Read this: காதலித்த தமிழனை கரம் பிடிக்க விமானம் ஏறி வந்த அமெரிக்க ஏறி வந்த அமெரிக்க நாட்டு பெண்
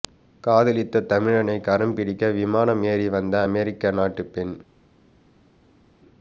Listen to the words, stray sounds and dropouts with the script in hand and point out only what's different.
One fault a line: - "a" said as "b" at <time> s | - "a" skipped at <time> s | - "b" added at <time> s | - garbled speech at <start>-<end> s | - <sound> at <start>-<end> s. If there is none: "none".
- "ஏறி வந்த அமெரிக்க" skipped at 3.9 s